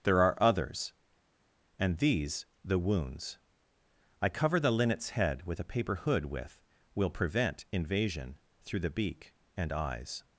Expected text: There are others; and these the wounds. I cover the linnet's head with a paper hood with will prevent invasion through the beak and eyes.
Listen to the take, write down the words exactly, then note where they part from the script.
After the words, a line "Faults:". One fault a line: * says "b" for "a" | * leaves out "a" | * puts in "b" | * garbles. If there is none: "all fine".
There are others; and these the wounds. I cover the linnet's head with a paper hood with will prevent invasion through the beak and eyes.
Faults:
all fine